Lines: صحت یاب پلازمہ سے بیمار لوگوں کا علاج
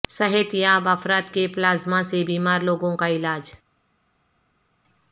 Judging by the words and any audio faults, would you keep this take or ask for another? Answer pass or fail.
fail